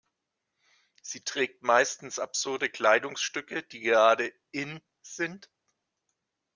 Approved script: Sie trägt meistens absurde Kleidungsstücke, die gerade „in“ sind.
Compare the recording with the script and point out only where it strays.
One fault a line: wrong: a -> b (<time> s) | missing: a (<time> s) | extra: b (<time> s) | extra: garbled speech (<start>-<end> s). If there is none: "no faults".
no faults